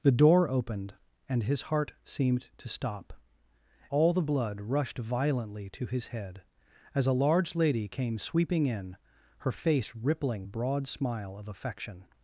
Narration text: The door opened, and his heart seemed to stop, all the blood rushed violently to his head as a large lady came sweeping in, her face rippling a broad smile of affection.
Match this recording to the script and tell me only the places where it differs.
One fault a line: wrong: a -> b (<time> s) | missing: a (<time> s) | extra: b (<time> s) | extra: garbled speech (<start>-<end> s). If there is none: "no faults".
no faults